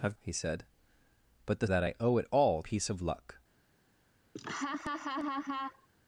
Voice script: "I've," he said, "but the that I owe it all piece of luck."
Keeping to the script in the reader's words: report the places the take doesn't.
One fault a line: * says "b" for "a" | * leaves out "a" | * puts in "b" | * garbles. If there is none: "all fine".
all fine